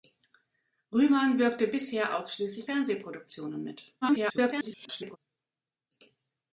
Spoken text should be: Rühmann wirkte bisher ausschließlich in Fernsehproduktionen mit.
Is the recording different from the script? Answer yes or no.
yes